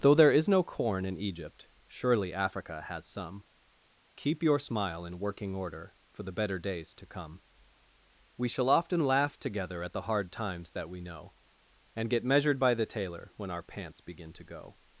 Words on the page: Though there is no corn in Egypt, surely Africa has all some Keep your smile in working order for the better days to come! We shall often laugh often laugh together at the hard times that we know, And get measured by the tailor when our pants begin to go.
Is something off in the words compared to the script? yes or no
yes